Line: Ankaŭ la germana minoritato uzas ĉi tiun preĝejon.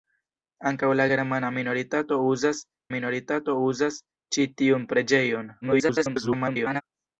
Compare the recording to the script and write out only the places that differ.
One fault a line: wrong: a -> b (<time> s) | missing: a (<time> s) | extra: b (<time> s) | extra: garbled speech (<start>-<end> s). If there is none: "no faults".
extra: minoritato uzas (2.9 s)
extra: garbled speech (5.6-6.8 s)